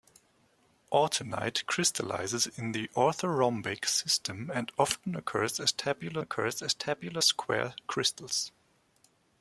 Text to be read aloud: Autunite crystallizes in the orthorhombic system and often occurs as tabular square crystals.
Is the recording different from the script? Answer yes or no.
yes